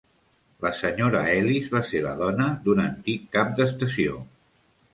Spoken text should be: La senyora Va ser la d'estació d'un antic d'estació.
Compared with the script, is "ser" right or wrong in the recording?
right